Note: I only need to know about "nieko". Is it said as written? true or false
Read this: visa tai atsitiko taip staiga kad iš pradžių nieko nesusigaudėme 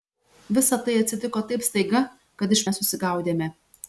false